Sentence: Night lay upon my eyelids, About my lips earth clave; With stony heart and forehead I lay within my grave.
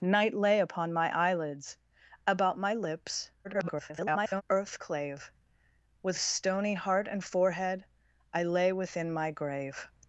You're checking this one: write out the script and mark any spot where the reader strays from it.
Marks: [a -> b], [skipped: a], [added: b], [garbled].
Night lay upon my eyelids, About my lips [garbled] earth clave; With stony heart and forehead I lay within my grave.